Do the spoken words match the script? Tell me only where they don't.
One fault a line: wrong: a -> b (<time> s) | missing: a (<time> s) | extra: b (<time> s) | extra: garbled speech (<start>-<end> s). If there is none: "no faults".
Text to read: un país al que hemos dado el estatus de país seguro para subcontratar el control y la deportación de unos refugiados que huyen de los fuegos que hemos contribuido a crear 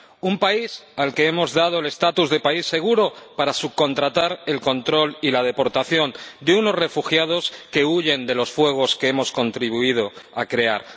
no faults